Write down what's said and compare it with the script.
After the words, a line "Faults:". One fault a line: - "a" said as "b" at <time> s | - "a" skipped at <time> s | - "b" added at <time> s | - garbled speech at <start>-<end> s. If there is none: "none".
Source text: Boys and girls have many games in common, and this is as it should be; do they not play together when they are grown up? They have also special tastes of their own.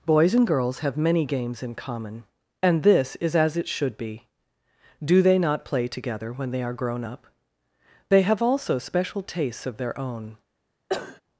Boys and girls have many games in common, and this is as it should be; do they not play together when they are grown up? They have also special tastes of their own.
Faults:
none